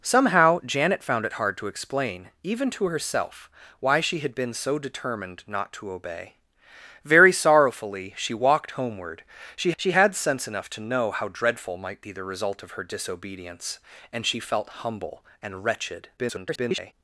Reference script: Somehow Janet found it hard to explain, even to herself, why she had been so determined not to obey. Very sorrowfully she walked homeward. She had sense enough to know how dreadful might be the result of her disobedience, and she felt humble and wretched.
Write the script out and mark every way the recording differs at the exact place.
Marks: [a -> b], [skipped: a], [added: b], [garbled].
Somehow Janet found it hard to explain, even to herself, why she had been so determined not to obey. Very sorrowfully she walked homeward. She [added: she] had sense enough to know how dreadful might be the result of her disobedience, and she felt humble and wretched. [garbled]